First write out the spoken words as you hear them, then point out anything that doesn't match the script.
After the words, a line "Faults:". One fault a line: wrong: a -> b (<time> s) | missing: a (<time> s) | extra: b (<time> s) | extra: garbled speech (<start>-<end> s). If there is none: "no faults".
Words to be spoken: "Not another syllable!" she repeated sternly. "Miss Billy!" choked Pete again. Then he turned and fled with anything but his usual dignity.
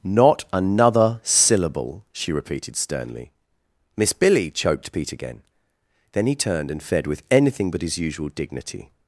"Not another syllable!" she repeated sternly. "Miss Billy!" choked Pete again. Then he turned and fed with anything but his usual dignity.
Faults:
wrong: fled -> fed (6.8 s)